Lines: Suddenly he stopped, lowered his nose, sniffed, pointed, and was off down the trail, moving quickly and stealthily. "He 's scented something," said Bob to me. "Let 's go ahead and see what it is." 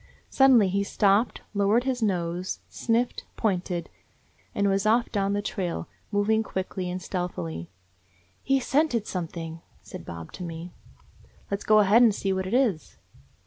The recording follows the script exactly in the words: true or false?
true